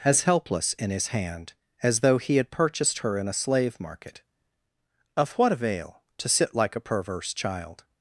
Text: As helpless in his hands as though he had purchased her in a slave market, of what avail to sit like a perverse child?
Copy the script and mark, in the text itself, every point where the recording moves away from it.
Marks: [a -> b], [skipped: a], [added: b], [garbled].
As helpless in his [hands -> hand] as though he had purchased her in a slave market, of what avail to sit like a perverse child?